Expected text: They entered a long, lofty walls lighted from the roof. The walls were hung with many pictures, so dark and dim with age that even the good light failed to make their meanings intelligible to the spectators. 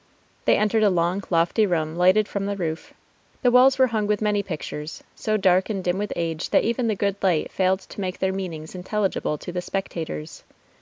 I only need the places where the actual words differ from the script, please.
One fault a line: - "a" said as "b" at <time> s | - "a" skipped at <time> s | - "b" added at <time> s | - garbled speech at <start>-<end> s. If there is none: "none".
- "walls" said as "room" at 1.7 s